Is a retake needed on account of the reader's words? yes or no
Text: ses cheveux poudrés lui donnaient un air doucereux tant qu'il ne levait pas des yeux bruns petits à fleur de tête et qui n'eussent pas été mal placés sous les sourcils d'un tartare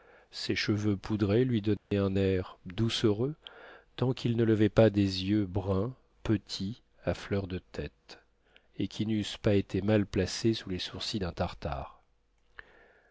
no